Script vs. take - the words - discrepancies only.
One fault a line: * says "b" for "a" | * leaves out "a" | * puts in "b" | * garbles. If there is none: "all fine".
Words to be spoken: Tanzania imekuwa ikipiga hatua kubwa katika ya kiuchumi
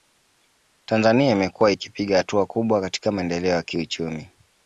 * puts in "maendeleo"